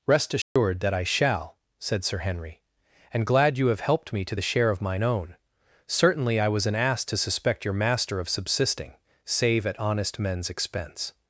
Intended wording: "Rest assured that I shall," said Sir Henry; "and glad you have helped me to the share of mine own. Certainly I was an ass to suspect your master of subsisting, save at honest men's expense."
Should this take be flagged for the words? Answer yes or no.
no